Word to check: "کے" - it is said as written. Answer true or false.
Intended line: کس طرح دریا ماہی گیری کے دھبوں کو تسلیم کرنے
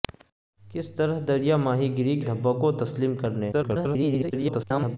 false